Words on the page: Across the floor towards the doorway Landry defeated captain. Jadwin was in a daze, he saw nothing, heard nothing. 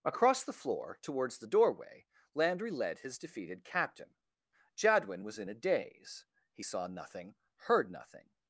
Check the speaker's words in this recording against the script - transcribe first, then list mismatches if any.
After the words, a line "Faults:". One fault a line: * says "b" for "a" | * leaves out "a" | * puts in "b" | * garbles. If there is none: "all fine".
Across the floor towards the doorway Landry led his defeated captain. Jadwin was in a daze, he saw nothing, heard nothing.
Faults:
* puts in "led his"